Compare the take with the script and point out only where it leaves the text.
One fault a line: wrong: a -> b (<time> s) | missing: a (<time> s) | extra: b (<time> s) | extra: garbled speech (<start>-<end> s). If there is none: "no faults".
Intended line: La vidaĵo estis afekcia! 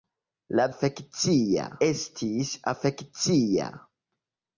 wrong: vidaĵo -> afekcia (0.7 s)